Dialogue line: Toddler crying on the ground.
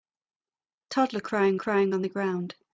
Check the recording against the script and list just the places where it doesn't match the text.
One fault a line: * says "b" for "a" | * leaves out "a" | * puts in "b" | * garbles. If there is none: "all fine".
* puts in "crying"